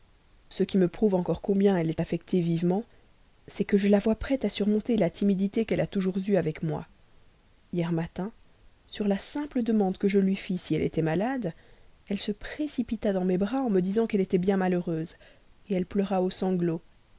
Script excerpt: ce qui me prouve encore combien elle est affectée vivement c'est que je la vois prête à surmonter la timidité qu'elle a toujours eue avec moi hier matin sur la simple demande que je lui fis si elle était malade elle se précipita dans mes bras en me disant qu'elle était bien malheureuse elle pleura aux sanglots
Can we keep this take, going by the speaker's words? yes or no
yes